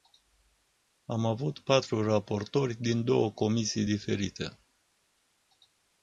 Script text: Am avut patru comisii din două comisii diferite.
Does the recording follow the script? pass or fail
fail